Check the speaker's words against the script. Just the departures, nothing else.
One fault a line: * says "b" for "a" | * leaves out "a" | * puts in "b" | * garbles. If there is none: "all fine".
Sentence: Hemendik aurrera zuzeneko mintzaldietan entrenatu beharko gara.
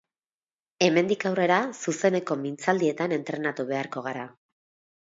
all fine